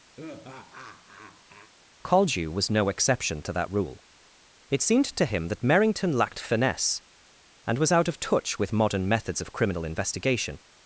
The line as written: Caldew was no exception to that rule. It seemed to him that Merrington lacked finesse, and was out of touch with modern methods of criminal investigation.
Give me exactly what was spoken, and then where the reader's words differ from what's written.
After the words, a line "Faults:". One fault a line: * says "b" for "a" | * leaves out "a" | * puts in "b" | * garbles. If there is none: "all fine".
Caldew was no exception to that rule. It seemed to him that Merrington lacked finesse, and was out of touch with modern methods of criminal investigation.
Faults:
all fine